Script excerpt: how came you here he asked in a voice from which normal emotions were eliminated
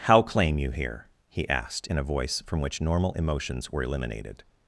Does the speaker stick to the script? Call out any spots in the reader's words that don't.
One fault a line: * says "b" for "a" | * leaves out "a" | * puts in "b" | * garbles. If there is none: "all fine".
* says "claim" for "came"